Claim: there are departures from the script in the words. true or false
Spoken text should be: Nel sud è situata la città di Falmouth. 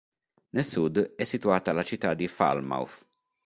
false